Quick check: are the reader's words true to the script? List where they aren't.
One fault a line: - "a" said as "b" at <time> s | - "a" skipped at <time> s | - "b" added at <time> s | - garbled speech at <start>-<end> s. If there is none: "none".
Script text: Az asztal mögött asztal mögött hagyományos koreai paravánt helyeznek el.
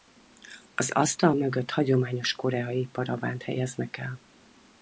- "asztal mögött" skipped at 1.7 s